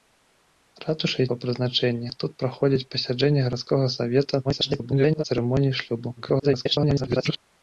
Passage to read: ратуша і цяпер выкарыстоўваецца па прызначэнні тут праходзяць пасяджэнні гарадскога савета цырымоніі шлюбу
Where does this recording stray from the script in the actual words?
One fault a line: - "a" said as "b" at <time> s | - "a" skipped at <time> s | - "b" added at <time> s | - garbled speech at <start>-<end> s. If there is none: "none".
- "цяпер выкарыстоўваецца" skipped at 1.3 s
- garbled speech at 4.4-5.2 s
- garbled speech at 6.2-7.4 s